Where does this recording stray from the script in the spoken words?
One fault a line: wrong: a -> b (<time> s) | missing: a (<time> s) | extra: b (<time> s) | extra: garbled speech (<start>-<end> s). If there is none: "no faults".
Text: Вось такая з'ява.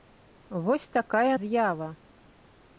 no faults